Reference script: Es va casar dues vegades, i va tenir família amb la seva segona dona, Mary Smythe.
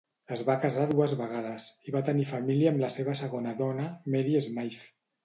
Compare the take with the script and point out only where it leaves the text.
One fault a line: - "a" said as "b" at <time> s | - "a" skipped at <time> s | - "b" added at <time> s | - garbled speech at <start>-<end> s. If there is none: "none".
none